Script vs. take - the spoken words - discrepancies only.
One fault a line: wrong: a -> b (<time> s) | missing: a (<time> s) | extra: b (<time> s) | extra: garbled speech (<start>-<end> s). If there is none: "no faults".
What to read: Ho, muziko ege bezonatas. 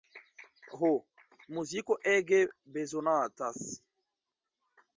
no faults